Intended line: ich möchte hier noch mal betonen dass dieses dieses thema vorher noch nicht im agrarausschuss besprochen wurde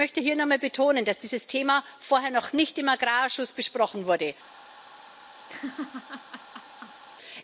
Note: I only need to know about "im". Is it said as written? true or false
true